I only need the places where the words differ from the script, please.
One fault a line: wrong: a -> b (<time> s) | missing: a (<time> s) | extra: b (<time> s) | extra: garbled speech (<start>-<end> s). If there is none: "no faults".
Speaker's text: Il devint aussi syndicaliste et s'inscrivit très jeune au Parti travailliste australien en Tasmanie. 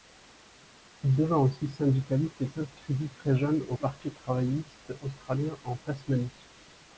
no faults